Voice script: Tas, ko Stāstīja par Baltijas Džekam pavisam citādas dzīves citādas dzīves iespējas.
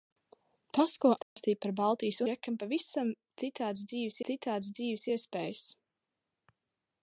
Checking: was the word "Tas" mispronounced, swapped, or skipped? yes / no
no